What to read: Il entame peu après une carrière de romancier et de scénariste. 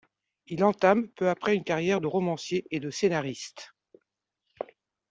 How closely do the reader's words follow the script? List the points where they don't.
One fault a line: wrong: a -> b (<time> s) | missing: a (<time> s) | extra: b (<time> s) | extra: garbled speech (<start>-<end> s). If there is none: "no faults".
no faults